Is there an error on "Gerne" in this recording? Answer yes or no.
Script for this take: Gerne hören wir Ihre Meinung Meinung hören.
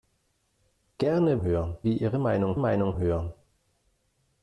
no